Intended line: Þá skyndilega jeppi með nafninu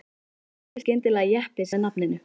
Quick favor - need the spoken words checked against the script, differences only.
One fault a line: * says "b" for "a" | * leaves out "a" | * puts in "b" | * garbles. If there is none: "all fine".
all fine